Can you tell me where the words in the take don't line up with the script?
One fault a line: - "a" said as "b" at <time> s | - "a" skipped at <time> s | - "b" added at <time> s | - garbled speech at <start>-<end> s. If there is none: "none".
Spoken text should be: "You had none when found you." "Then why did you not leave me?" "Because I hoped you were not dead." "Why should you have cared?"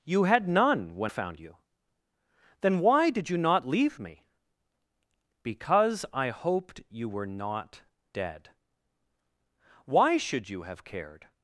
none